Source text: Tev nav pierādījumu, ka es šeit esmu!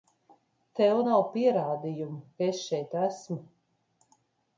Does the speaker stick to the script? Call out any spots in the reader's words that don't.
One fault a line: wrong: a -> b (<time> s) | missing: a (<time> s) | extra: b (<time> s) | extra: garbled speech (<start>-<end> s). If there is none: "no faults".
no faults